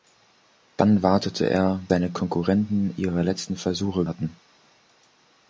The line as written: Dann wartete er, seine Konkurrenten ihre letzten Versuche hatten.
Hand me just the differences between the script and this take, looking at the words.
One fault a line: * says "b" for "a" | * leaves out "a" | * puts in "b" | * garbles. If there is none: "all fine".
all fine